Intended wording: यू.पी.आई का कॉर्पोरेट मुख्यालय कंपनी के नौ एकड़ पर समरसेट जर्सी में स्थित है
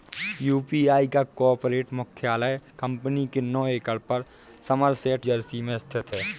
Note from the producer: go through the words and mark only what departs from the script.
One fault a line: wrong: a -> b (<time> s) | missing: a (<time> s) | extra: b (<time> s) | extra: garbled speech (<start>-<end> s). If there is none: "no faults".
no faults